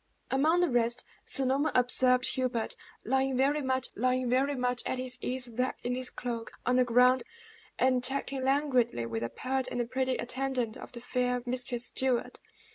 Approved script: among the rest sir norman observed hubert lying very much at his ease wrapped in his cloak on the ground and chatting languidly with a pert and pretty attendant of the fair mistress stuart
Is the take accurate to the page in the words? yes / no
no